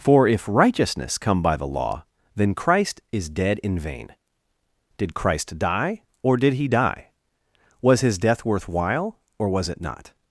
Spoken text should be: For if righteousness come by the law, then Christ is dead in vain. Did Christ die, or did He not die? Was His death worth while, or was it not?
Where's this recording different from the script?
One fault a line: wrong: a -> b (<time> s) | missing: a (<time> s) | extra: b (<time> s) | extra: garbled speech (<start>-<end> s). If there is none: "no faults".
missing: not (6.7 s)